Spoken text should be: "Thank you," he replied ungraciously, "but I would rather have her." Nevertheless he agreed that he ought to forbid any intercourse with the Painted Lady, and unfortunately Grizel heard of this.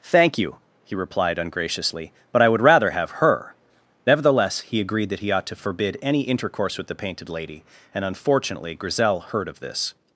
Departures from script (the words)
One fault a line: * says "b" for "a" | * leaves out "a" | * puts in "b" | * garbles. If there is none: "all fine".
all fine